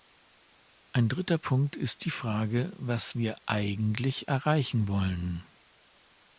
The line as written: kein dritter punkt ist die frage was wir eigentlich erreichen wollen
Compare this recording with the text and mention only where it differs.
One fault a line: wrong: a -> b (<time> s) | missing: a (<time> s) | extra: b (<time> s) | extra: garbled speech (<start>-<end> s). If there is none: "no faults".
wrong: kein -> ein (0.9 s)